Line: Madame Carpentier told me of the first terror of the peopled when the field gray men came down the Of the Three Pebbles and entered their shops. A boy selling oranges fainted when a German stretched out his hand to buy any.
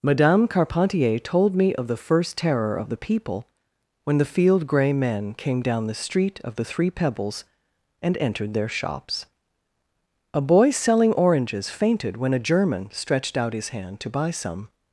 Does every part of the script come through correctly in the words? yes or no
no